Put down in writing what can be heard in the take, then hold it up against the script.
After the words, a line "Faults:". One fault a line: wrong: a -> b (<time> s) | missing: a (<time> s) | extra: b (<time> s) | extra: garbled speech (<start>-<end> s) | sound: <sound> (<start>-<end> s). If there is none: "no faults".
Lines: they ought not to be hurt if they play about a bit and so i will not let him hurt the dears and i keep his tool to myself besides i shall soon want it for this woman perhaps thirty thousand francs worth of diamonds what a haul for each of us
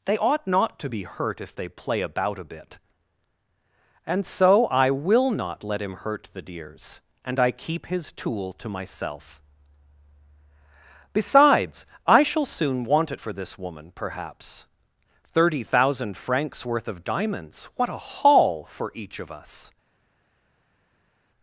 they ought not to be hurt if they play about a bit and so i will not let him hurt the dears and i keep his tool to myself besides i shall soon want it for this woman perhaps thirty thousand francs worth of diamonds what a haul for each of us
Faults:
no faults